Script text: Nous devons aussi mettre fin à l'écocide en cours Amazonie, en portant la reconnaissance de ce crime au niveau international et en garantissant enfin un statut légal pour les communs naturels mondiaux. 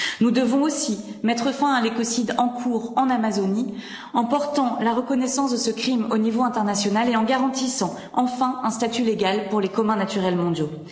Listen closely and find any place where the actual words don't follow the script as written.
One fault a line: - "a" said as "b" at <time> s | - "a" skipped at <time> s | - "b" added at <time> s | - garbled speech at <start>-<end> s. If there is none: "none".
- "en" added at 3.0 s